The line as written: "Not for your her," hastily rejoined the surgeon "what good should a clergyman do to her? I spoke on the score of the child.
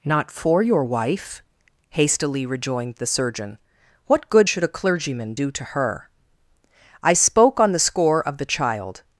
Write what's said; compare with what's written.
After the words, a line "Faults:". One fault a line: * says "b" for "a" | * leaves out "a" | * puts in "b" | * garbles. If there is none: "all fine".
"Not for your wife," hastily rejoined the surgeon "what good should a clergyman do to her? I spoke on the score of the child.
Faults:
* says "wife" for "her"